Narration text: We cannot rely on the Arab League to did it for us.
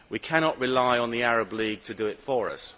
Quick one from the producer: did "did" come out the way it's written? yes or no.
no